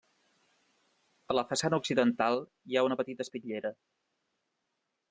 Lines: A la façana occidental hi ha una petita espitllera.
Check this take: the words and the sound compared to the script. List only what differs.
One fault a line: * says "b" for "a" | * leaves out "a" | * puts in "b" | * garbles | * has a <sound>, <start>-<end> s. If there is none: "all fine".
all fine